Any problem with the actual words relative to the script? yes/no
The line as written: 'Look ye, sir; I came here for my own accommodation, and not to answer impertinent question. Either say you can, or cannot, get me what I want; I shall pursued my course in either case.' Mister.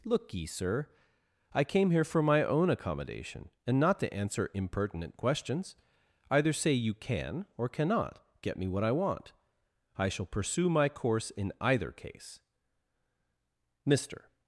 yes